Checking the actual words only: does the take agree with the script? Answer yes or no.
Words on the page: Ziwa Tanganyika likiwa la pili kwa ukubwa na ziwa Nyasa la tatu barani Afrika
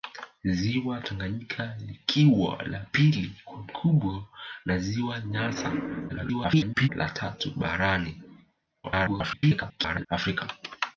no